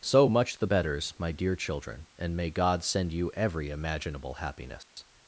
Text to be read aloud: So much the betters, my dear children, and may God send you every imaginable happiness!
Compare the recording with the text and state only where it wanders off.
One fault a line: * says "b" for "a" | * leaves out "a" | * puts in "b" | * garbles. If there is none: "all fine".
all fine